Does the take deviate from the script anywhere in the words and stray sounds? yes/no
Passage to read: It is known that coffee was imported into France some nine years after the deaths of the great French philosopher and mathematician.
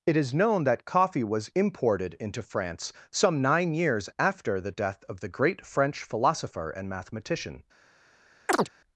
yes